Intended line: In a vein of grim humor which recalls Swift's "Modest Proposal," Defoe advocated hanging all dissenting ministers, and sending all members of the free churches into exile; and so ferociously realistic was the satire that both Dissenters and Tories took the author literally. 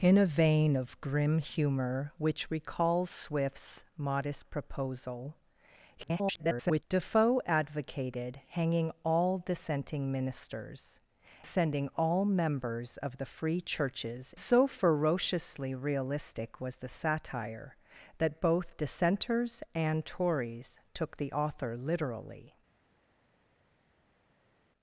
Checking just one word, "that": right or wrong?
right